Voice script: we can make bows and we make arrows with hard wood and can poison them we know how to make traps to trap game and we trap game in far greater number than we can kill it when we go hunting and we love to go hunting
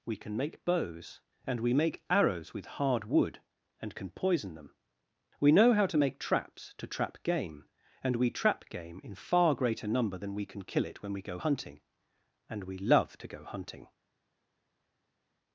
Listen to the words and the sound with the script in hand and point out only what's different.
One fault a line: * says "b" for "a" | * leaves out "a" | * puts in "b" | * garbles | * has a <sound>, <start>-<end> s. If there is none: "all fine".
all fine